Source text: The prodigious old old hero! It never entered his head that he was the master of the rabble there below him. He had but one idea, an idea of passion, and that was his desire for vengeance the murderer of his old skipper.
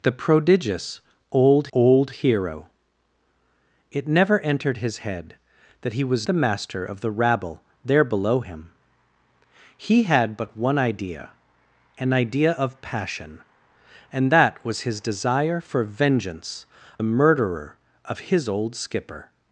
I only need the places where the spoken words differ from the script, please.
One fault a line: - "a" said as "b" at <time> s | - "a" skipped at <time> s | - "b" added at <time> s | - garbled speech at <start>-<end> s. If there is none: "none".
none